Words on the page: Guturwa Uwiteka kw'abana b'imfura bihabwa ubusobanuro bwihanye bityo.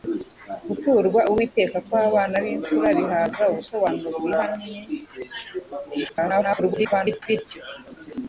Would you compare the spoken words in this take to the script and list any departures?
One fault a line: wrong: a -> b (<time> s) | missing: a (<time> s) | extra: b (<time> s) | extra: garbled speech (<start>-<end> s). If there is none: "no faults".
extra: garbled speech (6.1-7.2 s)